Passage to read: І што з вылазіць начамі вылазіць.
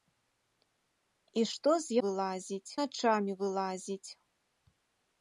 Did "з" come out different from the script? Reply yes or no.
no